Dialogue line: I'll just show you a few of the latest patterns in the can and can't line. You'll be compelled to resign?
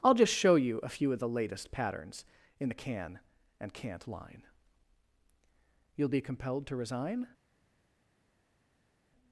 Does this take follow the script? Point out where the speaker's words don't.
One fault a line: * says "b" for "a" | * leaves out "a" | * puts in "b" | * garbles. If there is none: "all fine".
all fine